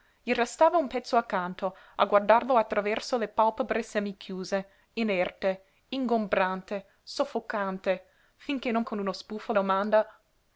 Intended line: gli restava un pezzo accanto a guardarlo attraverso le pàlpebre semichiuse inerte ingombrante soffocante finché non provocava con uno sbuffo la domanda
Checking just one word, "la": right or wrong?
wrong